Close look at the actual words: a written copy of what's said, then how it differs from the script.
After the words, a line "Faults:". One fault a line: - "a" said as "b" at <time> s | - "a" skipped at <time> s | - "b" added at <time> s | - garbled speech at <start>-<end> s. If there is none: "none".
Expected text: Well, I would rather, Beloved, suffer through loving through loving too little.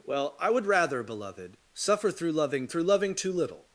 Well, I would rather, Beloved, suffer through loving through loving too little.
Faults:
none